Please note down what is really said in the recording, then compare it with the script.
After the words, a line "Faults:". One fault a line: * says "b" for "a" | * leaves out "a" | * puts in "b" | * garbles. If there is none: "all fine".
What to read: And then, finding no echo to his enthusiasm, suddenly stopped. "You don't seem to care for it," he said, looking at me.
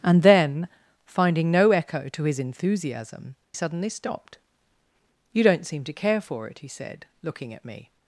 And then, finding no echo to his enthusiasm, suddenly stopped. "You don't seem to care for it," he said, looking at me.
Faults:
all fine